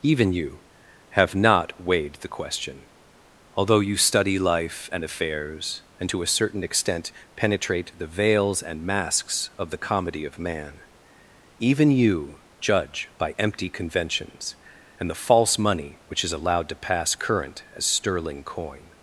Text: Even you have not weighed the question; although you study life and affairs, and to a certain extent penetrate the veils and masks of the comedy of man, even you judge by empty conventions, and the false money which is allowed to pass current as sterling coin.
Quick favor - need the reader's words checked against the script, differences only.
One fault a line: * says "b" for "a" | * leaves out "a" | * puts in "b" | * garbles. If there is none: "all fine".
all fine